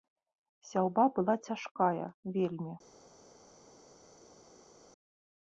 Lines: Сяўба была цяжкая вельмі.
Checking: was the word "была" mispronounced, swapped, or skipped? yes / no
no